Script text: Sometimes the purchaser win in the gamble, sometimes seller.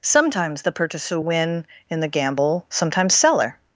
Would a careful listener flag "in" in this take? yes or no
no